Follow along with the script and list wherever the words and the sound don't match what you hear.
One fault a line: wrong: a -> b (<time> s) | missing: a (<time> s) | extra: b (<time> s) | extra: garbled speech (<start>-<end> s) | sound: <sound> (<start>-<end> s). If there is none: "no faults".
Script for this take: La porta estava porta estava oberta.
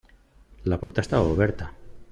sound: dropout (0.8-0.9 s)
missing: porta estava (1.3 s)